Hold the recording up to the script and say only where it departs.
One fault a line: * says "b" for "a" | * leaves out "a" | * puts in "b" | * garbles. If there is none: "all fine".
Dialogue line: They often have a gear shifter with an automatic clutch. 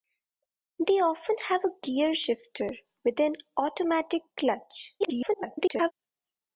* garbles